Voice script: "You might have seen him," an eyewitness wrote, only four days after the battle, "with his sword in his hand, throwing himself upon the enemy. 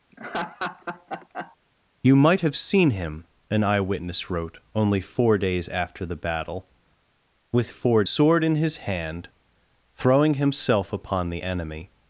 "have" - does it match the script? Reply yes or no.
yes